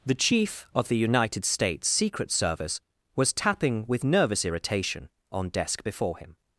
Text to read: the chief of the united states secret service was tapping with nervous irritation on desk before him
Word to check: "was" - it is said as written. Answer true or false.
true